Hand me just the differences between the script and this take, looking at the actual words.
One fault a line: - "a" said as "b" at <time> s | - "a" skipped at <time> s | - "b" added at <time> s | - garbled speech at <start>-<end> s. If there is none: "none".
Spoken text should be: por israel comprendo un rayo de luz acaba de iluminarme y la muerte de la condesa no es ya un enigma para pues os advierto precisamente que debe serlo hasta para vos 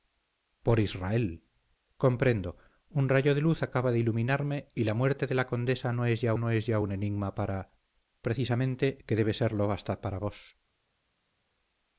- "no es ya" added at 6.4 s
- "pues os advierto" skipped at 7.8 s